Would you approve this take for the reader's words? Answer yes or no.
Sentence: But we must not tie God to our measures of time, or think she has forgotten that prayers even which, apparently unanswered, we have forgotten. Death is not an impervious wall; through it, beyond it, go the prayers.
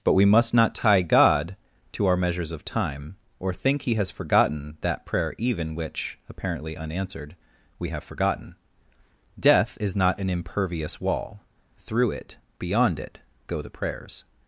no